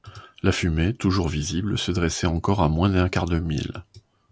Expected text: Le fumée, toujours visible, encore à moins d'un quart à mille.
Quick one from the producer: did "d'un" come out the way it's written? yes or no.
yes